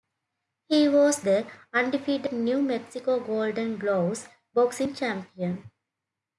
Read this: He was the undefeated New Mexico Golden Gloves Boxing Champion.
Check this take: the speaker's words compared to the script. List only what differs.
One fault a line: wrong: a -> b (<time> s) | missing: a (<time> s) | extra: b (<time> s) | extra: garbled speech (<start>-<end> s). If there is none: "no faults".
no faults